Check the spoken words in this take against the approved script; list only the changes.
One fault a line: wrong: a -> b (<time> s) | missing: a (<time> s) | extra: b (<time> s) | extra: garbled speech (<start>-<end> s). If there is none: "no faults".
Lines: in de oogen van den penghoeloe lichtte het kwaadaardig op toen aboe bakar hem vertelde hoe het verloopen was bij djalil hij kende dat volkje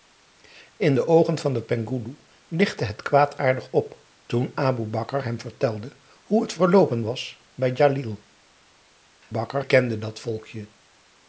wrong: hij -> bakar (9.3 s)